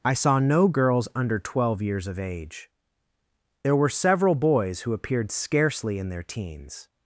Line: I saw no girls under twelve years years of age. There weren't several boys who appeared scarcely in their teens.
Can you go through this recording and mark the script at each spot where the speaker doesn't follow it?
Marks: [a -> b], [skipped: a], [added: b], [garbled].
I saw no girls under twelve years [skipped: years] of age. There [weren't -> were] several boys who appeared scarcely in their teens.